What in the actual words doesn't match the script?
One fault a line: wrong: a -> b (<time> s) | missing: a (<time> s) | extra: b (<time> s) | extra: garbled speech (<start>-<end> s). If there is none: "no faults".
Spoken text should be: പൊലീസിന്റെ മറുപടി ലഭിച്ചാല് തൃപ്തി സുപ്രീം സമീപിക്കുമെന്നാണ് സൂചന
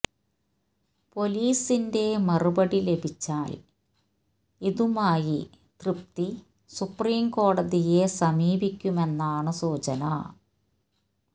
extra: ഇതുമായി (4.6 s)
extra: കോടതിയെ (7.3 s)